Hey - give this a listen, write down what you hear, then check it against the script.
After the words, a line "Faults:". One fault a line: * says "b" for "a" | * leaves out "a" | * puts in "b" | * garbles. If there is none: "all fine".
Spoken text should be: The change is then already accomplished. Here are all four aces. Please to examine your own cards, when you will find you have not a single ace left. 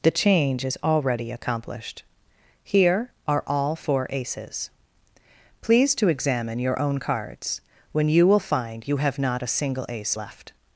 The change is already accomplished. Here are all four aces. Please to examine your own cards, when you will find you have not a single ace left.
Faults:
* leaves out "then"